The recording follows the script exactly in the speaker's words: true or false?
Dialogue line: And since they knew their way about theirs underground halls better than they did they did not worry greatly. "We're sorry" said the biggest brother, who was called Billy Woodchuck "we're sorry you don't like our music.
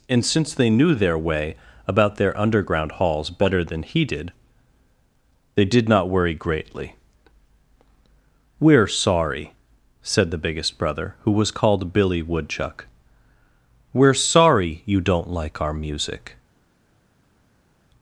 false